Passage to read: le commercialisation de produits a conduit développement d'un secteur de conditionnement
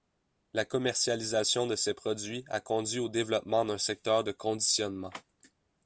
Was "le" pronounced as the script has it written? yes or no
no